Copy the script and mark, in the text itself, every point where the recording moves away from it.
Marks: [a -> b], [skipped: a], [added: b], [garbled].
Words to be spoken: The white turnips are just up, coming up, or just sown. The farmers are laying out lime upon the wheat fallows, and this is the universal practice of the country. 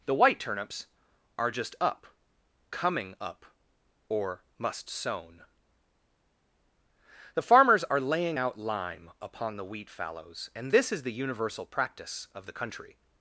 The white turnips are just up, coming up, or [just -> must] sown. The farmers are laying out lime upon the wheat fallows, and this is the universal practice of the country.